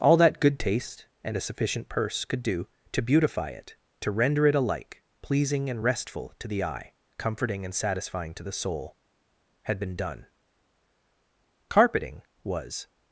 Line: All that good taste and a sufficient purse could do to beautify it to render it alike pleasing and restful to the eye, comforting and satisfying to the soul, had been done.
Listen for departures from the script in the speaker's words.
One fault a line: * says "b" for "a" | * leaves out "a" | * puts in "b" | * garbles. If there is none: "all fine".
* puts in "Carpeting was"